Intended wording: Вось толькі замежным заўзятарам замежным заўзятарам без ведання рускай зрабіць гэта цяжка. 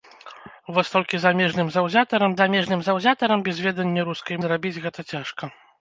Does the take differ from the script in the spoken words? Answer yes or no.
no